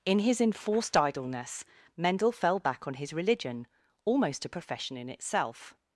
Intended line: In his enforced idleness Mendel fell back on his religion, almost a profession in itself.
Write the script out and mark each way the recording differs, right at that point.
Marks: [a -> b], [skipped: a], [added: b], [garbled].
In his enforced idleness Mendel fell back on his religion, almost a profession in itself.